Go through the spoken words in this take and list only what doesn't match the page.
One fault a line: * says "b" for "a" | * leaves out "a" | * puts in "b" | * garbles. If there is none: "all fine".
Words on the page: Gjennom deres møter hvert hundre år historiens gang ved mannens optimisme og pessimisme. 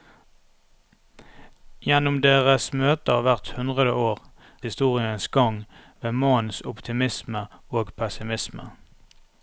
all fine